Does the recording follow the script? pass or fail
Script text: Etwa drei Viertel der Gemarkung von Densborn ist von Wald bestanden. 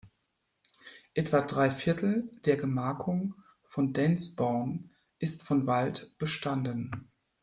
pass